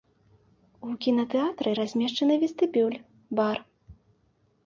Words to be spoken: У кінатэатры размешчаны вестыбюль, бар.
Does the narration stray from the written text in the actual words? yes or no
no